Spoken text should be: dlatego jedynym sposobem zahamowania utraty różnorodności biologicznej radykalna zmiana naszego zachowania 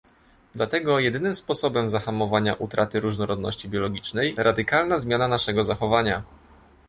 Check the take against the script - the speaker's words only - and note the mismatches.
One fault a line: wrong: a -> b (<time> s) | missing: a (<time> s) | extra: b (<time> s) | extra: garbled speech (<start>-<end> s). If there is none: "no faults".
no faults